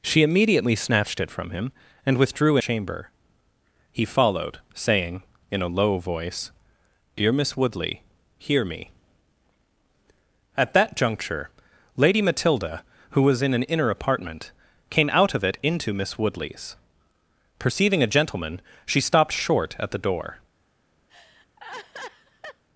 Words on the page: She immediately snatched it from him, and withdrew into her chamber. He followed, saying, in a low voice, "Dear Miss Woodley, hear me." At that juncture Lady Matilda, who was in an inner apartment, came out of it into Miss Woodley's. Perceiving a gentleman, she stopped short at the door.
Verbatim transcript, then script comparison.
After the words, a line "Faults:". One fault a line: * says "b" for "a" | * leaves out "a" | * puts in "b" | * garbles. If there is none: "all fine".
She immediately snatched it from him, and withdrew chamber. He followed, saying, in a low voice, "Dear Miss Woodley, hear me." At that juncture Lady Matilda, who was in an inner apartment, came out of it into Miss Woodley's. Perceiving a gentleman, she stopped short at the door.
Faults:
* leaves out "into her"